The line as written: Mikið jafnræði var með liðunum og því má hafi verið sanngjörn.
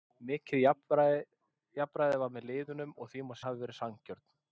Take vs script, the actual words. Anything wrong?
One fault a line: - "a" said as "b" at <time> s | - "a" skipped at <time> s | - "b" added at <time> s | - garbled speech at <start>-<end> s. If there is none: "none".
none